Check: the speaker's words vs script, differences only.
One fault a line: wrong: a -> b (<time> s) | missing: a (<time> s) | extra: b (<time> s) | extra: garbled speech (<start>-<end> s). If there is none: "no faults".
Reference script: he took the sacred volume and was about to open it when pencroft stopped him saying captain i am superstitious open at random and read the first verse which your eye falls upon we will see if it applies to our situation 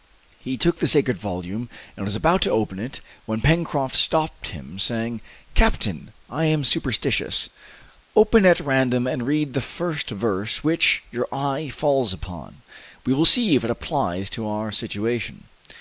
no faults